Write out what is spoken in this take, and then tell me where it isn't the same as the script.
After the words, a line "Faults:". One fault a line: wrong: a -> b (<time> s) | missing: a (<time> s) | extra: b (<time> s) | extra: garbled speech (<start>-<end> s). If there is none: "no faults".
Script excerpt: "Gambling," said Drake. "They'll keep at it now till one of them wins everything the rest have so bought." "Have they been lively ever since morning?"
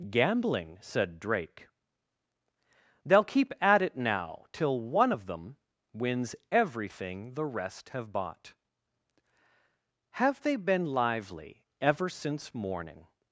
"Gambling," said Drake. "They'll keep at it now till one of them wins everything the rest have bought." "Have they been lively ever since morning?"
Faults:
missing: so (8.1 s)